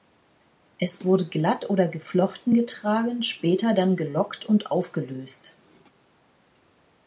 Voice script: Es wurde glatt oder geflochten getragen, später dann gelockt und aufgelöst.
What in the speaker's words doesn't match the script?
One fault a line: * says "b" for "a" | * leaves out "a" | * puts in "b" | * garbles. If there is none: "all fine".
all fine